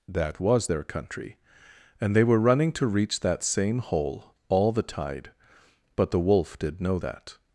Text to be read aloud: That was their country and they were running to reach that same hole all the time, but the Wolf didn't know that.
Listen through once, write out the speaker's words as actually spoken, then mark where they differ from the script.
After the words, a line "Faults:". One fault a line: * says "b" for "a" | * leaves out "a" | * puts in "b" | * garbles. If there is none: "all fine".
That was their country and they were running to reach that same hole all the tide, but the Wolf did know that.
Faults:
* says "tide" for "time"
* says "did" for "didn't"